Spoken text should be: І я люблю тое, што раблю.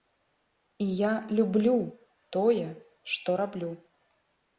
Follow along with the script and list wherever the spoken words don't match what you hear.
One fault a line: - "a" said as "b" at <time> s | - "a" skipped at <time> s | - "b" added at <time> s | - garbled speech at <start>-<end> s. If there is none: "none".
none